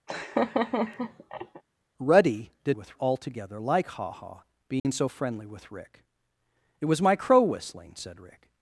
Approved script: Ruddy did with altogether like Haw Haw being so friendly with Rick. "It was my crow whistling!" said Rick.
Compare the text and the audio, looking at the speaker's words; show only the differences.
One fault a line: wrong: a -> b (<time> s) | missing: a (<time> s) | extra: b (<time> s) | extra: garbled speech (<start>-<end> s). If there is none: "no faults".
no faults